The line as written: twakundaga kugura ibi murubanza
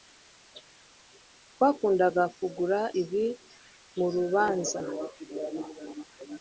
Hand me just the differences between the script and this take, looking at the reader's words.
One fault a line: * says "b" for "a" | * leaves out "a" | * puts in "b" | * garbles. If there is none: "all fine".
all fine